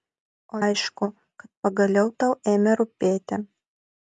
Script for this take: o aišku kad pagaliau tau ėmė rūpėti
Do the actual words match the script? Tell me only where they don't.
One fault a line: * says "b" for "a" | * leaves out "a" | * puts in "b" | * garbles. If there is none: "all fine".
all fine